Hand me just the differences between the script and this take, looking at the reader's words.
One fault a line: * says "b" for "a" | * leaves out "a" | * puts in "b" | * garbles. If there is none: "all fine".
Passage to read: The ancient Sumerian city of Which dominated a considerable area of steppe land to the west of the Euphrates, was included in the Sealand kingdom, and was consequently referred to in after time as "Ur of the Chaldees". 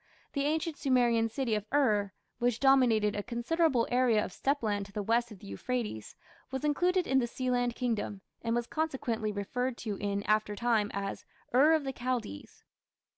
* puts in "Ur"